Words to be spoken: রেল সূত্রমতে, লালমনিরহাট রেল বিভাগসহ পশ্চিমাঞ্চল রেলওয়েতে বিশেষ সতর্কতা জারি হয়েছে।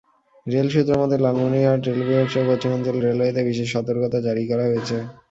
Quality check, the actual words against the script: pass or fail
fail